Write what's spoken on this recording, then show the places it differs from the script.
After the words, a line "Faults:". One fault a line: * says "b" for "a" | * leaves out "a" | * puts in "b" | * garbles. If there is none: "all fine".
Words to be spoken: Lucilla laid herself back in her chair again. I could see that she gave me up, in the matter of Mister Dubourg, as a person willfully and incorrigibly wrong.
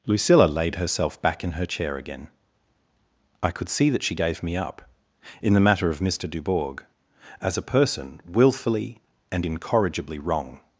Lucilla laid herself back in her chair again. I could see that she gave me up, in the matter of Mister Dubourg, as a person willfully and incorrigibly wrong.
Faults:
all fine